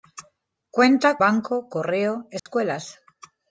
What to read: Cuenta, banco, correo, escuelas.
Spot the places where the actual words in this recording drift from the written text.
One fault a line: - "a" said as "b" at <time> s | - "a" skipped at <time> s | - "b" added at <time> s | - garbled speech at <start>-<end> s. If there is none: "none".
none